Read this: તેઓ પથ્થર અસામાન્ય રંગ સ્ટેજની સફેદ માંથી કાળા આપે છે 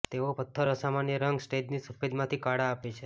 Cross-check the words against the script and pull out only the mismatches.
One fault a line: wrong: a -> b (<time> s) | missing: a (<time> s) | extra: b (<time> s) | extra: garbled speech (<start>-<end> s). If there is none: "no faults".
no faults